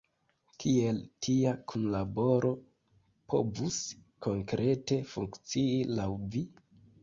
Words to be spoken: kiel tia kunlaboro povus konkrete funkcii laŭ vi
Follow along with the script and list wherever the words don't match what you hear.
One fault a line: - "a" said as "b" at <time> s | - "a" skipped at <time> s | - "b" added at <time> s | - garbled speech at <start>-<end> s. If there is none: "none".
none